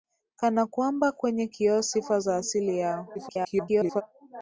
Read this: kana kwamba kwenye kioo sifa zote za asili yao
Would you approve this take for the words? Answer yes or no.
no